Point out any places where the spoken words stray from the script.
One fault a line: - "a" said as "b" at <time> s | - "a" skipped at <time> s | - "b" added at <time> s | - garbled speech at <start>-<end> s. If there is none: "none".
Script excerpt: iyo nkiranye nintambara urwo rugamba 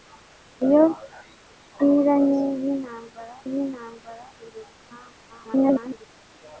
- "nintambara" added at 3.5 s
- garbled speech at 5.3-6.1 s